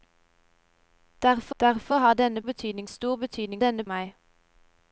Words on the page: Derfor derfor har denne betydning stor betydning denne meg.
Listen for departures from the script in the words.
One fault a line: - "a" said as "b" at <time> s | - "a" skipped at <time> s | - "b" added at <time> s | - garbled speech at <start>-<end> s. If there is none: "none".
none